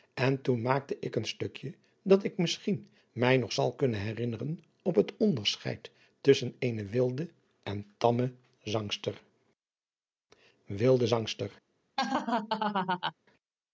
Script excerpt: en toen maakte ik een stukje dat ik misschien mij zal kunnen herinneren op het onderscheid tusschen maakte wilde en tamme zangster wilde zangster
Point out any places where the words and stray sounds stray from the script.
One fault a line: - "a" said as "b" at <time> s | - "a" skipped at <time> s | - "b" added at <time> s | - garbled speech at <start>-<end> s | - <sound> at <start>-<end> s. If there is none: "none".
- "nog" added at 3.4 s
- "maakte" said as "eene" at 6.6 s
- laugh at 12.0-13.1 s